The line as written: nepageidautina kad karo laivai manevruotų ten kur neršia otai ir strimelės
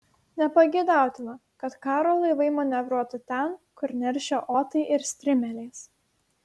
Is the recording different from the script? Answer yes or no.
no